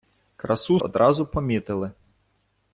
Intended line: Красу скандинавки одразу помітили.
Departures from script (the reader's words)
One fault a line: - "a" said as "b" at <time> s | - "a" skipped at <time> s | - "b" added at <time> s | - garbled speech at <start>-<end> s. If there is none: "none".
- "скандинавки" skipped at 0.8 s